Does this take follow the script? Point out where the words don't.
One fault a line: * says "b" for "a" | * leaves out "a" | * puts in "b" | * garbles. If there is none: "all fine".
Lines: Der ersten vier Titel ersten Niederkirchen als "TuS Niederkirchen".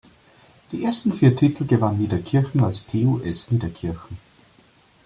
* says "Die" for "Der"
* says "gewann" for "ersten"